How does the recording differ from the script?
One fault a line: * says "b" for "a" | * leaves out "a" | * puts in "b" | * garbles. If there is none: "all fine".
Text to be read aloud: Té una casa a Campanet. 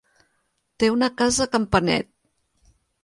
all fine